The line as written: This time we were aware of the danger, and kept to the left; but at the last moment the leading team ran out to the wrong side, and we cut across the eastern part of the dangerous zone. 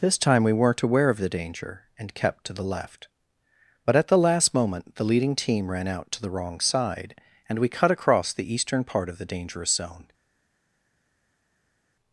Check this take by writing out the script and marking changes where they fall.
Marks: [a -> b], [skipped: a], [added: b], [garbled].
This time we [were -> weren't] aware of the danger, and kept to the left; but at the last moment the leading team ran out to the wrong side, and we cut across the eastern part of the dangerous zone.